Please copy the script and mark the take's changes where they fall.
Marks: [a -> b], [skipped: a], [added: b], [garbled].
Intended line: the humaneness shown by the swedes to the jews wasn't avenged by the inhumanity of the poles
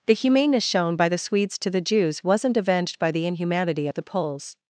the humaneness shown by the swedes to the jews wasn't avenged by the inhumanity of the poles